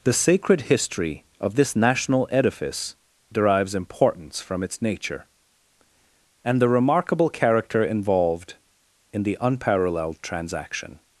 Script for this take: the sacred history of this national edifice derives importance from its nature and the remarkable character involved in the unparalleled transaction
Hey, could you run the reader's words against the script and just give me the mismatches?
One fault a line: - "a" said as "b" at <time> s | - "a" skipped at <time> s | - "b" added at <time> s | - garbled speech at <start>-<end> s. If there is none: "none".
none